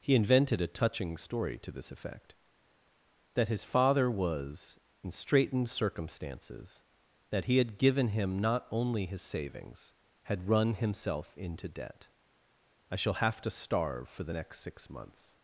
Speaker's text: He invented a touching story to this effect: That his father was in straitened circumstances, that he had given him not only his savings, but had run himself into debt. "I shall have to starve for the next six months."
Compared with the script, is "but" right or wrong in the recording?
wrong